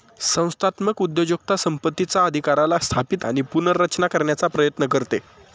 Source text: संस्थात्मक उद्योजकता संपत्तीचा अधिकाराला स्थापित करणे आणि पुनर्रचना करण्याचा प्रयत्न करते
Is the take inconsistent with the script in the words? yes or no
yes